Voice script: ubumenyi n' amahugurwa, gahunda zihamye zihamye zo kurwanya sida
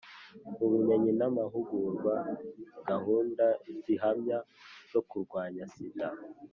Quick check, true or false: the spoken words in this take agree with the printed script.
false